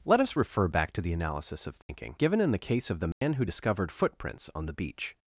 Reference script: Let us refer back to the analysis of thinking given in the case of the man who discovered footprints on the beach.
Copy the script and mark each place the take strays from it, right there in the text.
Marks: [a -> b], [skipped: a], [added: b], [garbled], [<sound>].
Let us refer back to the analysis of thinking [dropout] given in the case of the man [dropout] who discovered footprints on the beach.